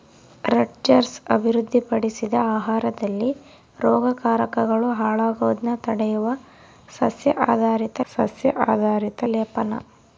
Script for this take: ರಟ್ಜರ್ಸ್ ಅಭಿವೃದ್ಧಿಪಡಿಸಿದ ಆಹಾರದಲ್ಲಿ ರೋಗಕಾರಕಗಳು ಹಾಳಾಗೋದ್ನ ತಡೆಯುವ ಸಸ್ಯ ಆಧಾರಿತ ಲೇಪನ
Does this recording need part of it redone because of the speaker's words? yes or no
yes